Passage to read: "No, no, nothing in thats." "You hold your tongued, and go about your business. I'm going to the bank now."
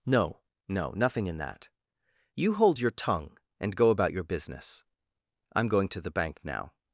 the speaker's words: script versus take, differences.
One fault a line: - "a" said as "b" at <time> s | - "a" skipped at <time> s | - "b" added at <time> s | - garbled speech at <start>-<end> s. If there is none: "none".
- "thats" said as "that" at 1.4 s
- "tongued" said as "tongue" at 2.9 s